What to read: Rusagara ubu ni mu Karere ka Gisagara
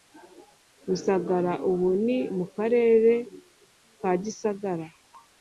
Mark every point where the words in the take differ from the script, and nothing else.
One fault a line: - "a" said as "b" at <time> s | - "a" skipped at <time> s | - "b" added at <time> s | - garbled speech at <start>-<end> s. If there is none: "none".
none